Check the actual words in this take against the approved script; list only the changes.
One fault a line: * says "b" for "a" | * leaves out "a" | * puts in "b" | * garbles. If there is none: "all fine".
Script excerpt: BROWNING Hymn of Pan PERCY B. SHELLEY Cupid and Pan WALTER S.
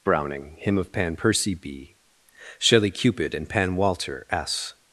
all fine